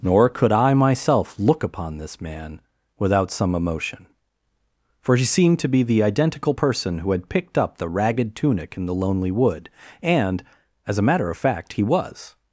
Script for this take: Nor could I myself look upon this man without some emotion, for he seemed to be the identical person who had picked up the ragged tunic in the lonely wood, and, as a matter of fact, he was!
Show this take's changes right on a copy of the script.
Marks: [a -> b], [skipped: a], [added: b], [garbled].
Nor could I myself look upon this man without some emotion, for he seemed to be the identical person who had picked up the ragged tunic in the lonely wood, and, as a matter of fact, he was!